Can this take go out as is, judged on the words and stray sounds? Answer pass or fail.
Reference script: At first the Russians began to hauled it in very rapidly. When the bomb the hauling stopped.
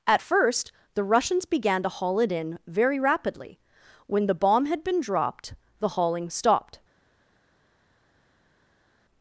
fail